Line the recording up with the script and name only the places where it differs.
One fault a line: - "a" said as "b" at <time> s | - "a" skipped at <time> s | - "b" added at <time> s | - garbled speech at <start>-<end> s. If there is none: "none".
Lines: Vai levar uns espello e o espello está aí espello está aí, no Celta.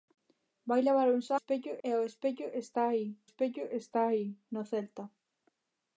none